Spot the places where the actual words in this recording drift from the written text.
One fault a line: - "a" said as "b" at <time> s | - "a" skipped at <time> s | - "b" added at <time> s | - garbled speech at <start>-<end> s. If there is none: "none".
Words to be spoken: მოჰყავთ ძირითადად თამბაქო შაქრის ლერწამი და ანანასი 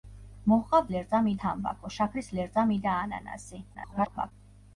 - "ძირითადად" said as "ლერწამი" at 1.0 s
- garbled speech at 3.7-4.3 s